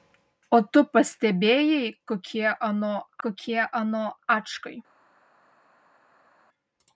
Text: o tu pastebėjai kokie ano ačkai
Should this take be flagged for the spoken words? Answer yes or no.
yes